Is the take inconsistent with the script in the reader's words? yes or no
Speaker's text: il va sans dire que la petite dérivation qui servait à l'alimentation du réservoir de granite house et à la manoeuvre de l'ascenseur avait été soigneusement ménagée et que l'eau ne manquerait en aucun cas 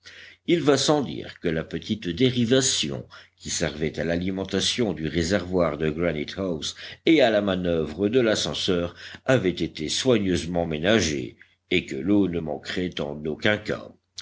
no